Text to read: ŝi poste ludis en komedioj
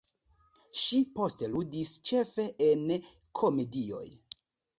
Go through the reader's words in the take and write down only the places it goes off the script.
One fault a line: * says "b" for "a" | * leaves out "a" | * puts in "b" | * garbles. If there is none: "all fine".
* puts in "ĉefe"